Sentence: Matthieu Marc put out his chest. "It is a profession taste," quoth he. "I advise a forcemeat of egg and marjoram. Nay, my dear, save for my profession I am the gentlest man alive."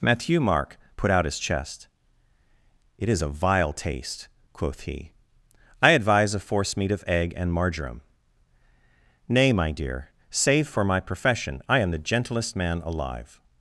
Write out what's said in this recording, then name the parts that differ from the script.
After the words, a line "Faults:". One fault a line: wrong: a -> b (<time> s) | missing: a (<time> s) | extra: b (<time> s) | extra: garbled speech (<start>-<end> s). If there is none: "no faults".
Matthieu Marc put out his chest. "It is a vile taste," quoth he. "I advise a forcemeat of egg and marjoram. Nay, my dear, save for my profession I am the gentlest man alive."
Faults:
wrong: profession -> vile (3.3 s)